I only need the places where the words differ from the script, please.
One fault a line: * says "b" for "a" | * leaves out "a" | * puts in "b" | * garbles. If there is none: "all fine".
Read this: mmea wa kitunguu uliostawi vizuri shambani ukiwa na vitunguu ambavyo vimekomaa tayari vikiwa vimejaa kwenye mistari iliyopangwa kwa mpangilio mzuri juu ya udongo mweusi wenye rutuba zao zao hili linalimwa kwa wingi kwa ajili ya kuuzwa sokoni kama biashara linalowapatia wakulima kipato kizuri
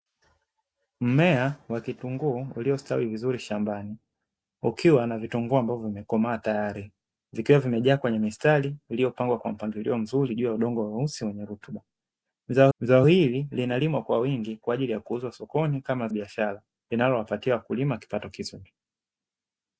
all fine